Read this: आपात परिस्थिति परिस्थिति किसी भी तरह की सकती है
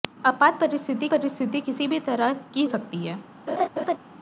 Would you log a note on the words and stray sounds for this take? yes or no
yes